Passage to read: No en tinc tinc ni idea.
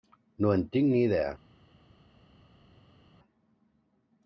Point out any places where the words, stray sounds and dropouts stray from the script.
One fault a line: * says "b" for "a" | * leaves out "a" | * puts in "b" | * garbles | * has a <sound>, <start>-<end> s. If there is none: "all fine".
* leaves out "tinc"